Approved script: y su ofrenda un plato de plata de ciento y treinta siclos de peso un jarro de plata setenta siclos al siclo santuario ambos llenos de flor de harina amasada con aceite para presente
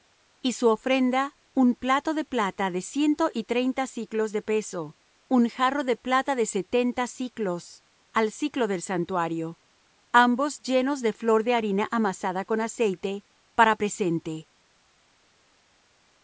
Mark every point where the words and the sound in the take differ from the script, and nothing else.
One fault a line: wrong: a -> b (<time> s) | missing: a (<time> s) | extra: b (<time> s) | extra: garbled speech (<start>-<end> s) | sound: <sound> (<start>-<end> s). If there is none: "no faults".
extra: de (6.3 s)
extra: del (8.7 s)